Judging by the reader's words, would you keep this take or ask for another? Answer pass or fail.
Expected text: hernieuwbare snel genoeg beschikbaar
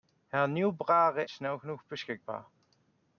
pass